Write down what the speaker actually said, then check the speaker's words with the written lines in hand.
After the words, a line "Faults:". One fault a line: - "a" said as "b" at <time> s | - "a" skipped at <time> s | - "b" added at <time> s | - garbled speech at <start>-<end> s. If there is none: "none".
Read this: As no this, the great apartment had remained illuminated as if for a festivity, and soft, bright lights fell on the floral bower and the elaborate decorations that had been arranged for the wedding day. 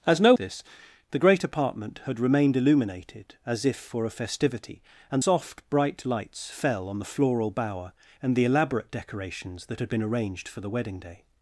As no this, the great apartment had remained illuminated as if for a festivity, and soft, bright lights fell on the floral bower and the elaborate decorations that had been arranged for the wedding day.
Faults:
none